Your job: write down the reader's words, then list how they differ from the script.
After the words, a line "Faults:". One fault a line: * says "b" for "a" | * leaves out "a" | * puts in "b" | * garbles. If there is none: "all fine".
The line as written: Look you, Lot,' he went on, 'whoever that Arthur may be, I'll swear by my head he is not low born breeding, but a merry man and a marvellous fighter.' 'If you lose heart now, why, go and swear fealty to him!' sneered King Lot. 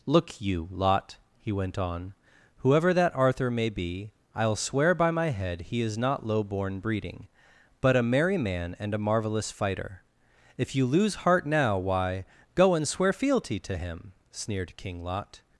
Look you, Lot,' he went on, 'whoever that Arthur may be, I'll swear by my head he is not low born breeding, but a merry man and a marvellous fighter.' 'If you lose heart now, why, go and swear fealty to him!' sneered King Lot.
Faults:
all fine